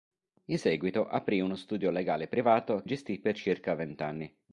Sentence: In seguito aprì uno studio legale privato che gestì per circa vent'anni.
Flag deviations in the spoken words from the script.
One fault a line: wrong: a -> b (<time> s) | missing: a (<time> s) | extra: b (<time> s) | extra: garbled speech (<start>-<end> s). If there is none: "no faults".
missing: che (2.8 s)